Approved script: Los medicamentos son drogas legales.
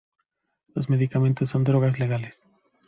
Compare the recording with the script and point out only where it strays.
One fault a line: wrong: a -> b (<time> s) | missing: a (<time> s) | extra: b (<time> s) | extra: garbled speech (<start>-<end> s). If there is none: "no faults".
no faults